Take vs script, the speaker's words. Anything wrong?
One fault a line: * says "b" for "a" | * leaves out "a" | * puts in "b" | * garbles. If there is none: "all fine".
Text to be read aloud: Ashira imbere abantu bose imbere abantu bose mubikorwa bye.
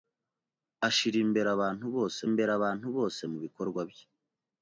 all fine